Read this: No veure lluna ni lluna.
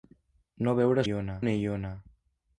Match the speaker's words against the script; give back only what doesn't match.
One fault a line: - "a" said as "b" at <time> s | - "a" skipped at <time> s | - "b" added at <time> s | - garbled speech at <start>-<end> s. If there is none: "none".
none